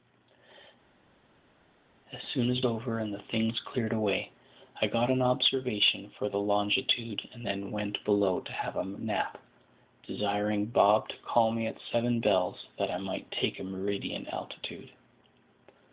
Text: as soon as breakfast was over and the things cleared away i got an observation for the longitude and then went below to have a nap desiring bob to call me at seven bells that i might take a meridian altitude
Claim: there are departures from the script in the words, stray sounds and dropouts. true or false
true